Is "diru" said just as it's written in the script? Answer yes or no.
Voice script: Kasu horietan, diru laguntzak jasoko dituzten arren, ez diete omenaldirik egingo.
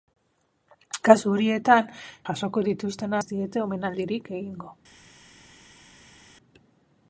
no